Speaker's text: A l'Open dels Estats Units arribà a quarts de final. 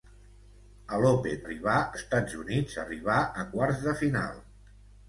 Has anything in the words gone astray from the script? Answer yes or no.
yes